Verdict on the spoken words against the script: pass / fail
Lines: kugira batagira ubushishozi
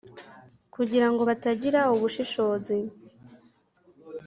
fail